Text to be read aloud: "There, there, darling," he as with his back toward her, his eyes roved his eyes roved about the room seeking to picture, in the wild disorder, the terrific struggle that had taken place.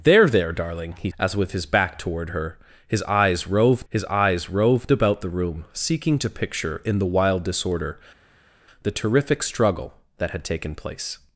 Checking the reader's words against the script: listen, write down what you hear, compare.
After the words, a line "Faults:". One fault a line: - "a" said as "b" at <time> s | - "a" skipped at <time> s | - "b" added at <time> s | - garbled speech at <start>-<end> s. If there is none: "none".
"There, there, darling," he as with his back toward her, his eyes roved his eyes roved about the room seeking to picture, in the wild disorder, the terrific struggle that had taken place.
Faults:
none